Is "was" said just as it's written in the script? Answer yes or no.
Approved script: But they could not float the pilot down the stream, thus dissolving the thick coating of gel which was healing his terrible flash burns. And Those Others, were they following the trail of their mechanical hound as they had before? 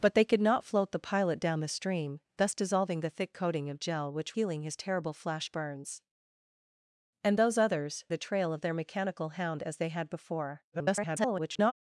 no